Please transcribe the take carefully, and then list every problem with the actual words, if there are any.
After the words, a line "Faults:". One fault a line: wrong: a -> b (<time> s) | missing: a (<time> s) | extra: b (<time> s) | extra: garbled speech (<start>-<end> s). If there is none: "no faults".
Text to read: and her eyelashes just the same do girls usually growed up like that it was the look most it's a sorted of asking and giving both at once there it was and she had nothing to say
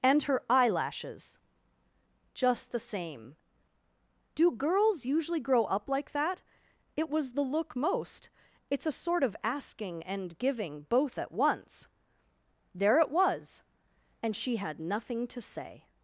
and her eyelashes just the same do girls usually grow up like that it was the look most it's a sort of asking and giving both at once there it was and she had nothing to say
Faults:
wrong: growed -> grow (5.4 s)
wrong: sorted -> sort (8.9 s)